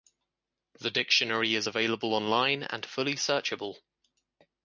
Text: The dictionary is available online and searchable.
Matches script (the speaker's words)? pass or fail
fail